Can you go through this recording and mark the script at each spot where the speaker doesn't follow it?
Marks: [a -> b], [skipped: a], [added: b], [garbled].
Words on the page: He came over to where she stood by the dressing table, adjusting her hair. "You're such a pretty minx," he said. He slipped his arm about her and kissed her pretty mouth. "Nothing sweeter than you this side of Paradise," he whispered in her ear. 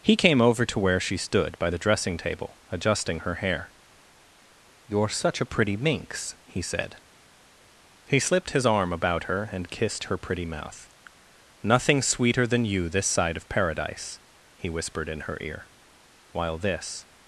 He came over to where she stood by the dressing table, adjusting her hair. "You're such a pretty minx," he said. He slipped his arm about her and kissed her pretty mouth. "Nothing sweeter than you this side of Paradise," he whispered in her ear. [added: While this]